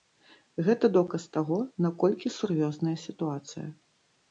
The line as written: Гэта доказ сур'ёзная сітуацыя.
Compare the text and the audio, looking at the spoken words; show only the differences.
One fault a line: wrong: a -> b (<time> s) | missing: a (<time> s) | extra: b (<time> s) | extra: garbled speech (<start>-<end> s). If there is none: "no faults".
extra: таго наколькі (1.4 s)